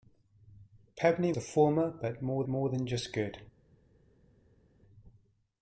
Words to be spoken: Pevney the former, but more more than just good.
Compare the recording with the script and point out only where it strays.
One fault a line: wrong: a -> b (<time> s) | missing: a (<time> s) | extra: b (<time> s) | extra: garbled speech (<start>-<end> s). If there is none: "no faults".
no faults